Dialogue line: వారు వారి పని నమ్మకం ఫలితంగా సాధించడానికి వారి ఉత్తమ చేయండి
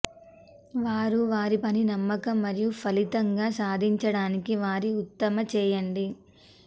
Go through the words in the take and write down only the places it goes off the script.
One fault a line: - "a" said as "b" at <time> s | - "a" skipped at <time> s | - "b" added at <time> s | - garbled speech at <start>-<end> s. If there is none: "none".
- "మరియు" added at 2.4 s